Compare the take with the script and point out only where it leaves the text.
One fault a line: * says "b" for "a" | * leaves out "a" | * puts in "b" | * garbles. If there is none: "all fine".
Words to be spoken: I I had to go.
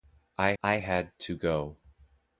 all fine